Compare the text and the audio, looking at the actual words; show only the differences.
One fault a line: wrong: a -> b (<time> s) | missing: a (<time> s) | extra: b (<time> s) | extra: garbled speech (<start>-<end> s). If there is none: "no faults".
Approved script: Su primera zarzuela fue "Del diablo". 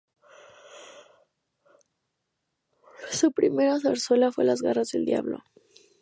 extra: Las garras (4.4 s)